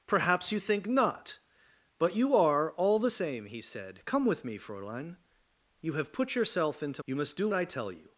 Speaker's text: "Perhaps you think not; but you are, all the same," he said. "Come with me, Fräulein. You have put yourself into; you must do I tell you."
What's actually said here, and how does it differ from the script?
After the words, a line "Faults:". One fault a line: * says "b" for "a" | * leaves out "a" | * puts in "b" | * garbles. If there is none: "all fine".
"Perhaps you think not; but you are, all the same," he said. "Come with me, Fräulein. You have put yourself into; you must do I tell you."
Faults:
all fine